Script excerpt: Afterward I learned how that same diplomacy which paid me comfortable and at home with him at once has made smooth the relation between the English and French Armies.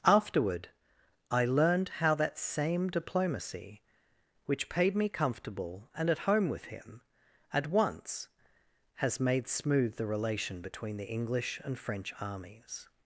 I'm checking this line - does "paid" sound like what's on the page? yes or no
yes